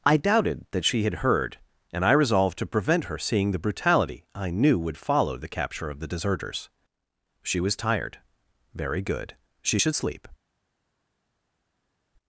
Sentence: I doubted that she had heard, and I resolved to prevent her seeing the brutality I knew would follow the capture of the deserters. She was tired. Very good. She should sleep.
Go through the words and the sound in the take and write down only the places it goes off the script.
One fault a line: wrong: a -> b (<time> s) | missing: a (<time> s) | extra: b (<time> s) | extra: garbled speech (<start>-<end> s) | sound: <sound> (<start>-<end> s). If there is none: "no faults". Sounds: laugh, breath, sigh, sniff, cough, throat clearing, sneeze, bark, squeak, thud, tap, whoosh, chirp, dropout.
no faults